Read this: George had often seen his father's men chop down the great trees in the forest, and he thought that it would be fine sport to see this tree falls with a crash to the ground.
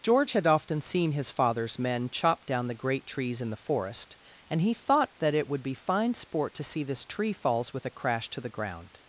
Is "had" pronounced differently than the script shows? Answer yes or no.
no